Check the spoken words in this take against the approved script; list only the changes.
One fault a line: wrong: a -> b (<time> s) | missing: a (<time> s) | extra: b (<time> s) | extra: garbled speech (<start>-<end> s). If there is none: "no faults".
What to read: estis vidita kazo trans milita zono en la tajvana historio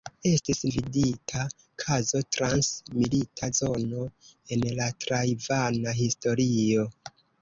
no faults